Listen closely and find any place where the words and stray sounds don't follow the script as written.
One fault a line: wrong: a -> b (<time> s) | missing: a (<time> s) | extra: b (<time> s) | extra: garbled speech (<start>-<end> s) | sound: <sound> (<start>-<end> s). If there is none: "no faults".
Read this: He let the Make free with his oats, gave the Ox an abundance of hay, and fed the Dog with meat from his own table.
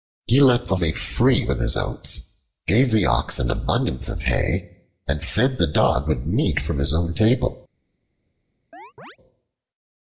sound: chirp (8.7-9.2 s)